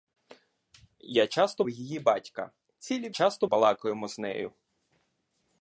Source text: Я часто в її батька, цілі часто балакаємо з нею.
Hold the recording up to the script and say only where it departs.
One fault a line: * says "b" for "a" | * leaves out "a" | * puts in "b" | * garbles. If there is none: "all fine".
all fine